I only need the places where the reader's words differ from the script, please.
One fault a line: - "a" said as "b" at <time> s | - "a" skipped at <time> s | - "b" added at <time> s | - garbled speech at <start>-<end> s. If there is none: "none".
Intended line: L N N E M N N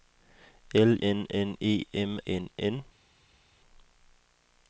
none